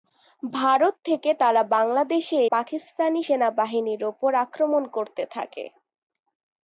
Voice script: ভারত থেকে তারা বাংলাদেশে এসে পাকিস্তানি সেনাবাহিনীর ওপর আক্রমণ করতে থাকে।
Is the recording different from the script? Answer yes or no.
yes